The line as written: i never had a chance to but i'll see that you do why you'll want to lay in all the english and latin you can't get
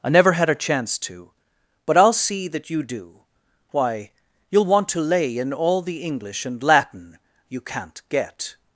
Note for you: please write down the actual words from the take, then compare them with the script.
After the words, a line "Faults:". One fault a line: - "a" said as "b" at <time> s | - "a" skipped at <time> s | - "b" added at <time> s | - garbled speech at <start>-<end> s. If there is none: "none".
i never had a chance to but i'll see that you do why you'll want to lay in all the english and latin you can't get
Faults:
none